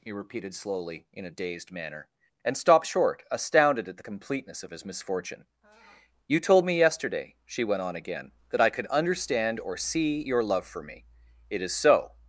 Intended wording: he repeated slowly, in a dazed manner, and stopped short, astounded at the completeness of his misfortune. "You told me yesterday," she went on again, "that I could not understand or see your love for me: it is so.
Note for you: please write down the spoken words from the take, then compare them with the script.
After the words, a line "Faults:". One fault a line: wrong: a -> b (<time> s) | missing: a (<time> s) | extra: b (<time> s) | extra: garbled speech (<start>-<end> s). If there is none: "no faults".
he repeated slowly, in a dazed manner, and stopped short, astounded at the completeness of his misfortune. "You told me yesterday," she went on again, "that I could understand or see your love for me: it is so.
Faults:
missing: not (8.9 s)